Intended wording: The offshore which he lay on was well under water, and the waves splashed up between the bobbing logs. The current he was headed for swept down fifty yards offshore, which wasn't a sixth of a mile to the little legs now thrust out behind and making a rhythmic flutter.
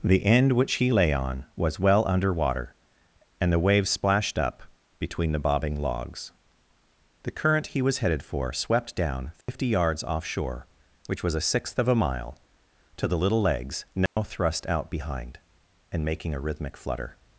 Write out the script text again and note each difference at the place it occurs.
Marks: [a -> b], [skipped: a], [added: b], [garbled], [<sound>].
The [offshore -> end] which he lay on was well under water, and the waves splashed up between the bobbing logs. The current he was headed for swept down fifty [dropout] yards offshore, which [wasn't -> was] a sixth of a mile to the little legs now [dropout] thrust out behind and making a rhythmic flutter.